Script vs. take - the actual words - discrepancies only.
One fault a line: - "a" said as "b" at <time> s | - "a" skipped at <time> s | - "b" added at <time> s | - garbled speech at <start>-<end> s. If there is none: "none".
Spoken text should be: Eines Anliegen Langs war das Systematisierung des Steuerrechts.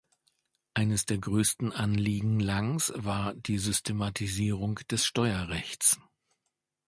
- "der größten" added at 1.1 s
- "das" said as "die" at 3.3 s